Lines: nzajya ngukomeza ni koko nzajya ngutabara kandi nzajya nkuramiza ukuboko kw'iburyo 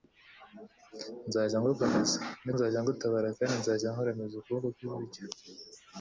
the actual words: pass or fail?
fail